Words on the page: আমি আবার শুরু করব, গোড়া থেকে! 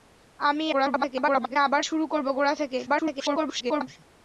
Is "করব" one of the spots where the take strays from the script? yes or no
no